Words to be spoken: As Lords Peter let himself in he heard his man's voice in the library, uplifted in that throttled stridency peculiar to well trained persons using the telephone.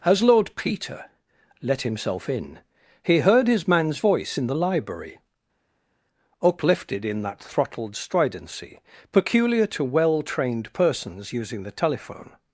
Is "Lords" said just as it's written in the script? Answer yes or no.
no